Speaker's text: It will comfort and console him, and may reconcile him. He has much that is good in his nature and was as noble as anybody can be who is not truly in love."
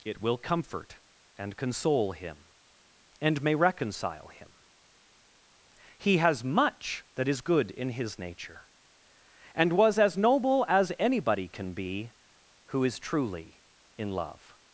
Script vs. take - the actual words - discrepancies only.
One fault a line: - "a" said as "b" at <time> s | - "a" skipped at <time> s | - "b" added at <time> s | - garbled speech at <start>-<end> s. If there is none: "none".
- "not" skipped at 13.0 s